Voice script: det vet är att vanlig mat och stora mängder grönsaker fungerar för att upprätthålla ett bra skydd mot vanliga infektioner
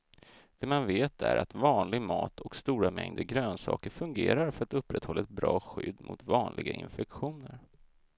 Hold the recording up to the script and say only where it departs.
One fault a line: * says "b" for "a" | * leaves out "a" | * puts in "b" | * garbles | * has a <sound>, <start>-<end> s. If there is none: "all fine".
* puts in "man"